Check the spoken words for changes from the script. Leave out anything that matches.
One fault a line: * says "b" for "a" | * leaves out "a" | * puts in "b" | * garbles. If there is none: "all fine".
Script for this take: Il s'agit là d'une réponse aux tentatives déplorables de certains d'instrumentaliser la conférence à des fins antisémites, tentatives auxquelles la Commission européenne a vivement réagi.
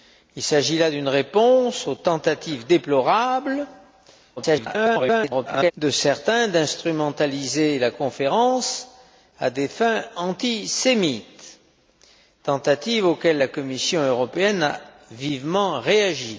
* garbles